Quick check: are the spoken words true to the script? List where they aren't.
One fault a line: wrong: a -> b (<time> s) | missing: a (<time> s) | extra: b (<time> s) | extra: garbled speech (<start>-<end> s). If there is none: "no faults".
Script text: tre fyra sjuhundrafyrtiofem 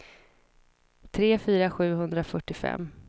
no faults